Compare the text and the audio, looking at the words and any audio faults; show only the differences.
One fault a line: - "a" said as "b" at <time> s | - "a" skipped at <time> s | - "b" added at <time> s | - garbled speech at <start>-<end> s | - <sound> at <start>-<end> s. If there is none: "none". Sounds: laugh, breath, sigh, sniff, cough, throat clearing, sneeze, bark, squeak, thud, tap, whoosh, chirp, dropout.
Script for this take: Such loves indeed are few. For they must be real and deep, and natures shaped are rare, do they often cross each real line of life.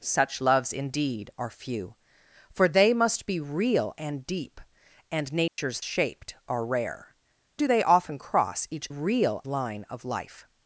- dropout at 5.5-5.6 s